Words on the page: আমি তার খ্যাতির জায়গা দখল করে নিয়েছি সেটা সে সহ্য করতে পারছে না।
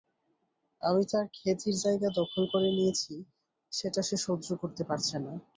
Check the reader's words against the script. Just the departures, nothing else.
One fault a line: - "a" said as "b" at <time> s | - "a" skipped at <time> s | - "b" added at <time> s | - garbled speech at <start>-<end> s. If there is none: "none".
none